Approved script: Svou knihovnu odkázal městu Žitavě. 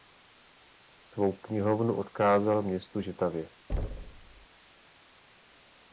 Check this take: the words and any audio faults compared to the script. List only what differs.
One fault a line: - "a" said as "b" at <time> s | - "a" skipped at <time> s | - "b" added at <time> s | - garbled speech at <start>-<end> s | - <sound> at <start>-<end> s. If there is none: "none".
- thud at 3.7-4.5 s